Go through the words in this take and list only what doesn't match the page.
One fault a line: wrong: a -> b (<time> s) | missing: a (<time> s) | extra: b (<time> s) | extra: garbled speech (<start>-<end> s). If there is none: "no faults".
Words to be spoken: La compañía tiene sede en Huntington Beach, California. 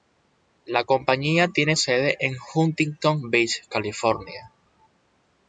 no faults